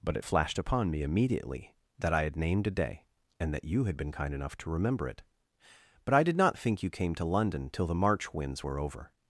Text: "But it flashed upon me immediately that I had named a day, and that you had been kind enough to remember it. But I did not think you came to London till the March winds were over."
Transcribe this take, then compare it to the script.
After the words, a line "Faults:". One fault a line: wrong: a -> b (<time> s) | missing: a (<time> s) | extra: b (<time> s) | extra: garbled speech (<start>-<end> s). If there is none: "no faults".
"But it flashed upon me immediately that I had named a day, and that you had been kind enough to remember it. But I did not think you came to London till the March winds were over."
Faults:
no faults